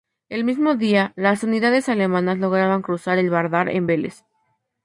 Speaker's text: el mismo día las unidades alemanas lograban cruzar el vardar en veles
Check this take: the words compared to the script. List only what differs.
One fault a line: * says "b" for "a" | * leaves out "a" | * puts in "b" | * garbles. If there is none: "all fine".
all fine